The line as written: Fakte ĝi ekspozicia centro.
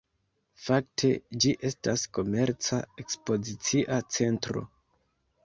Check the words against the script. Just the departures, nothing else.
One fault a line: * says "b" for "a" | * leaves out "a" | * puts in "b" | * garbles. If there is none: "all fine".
* puts in "estas komerca"